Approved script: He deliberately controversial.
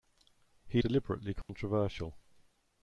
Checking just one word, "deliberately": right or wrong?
right